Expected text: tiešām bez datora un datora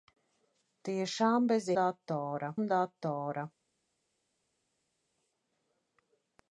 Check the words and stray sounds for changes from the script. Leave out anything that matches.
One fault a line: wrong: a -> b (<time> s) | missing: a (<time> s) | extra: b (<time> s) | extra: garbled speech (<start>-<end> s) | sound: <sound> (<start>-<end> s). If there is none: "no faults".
no faults